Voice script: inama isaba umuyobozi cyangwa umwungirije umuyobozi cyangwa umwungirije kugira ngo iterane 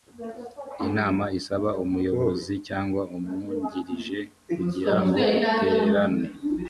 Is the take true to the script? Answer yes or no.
no